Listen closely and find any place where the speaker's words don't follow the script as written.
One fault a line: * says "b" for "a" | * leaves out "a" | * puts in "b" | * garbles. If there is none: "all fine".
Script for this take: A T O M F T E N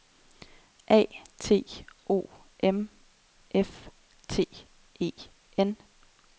all fine